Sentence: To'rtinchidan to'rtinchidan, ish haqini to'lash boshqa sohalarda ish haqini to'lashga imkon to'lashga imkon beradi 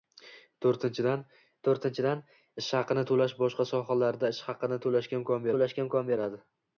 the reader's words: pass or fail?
pass